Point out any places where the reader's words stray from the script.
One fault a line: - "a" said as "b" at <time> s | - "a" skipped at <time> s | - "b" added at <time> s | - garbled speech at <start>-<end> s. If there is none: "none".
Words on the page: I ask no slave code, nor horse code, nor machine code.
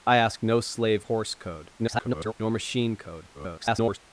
- "code nor" skipped at 1.1 s
- garbled speech at 1.8-2.3 s
- garbled speech at 3.3-4.0 s